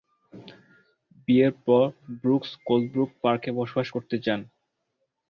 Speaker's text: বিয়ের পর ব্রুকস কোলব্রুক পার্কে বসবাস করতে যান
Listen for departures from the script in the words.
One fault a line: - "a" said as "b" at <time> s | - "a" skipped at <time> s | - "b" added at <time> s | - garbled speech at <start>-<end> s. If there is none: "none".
none